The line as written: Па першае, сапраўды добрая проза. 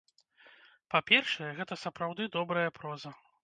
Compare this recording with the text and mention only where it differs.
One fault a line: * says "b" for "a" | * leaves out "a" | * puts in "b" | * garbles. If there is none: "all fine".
* puts in "гэта"